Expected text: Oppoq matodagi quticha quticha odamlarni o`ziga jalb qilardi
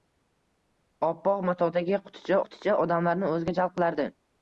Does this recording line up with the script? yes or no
yes